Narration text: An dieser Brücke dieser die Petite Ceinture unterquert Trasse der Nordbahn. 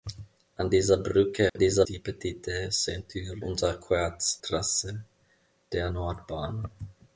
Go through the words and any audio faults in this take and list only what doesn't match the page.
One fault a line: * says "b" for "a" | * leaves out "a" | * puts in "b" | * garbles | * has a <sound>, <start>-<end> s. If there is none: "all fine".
* has a dropout, 1.5-1.6 s